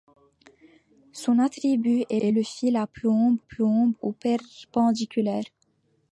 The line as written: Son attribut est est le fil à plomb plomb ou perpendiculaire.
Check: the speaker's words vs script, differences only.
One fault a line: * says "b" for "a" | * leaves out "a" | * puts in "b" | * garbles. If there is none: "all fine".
all fine